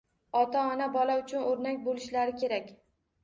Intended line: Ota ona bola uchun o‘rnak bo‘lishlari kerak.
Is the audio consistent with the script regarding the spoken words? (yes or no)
yes